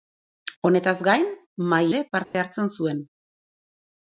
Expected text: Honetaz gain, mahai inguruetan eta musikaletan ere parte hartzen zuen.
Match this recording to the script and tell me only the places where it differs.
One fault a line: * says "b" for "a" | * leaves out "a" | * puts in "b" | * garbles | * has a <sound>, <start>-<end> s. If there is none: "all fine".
* leaves out "inguruetan eta musikaletan"
* has a dropout, 2.2-2.3 s